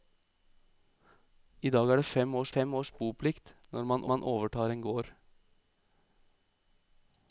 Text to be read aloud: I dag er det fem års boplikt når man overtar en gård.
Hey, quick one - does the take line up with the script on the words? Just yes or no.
no